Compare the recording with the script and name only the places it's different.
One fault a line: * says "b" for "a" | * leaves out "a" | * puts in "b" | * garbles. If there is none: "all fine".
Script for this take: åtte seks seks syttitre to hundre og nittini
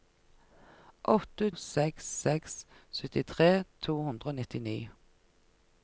all fine